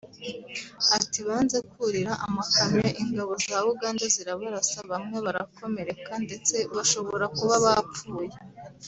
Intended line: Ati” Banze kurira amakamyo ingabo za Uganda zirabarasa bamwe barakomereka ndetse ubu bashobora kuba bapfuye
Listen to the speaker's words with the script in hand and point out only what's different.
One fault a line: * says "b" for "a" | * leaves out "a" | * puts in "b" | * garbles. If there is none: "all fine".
* leaves out "ubu"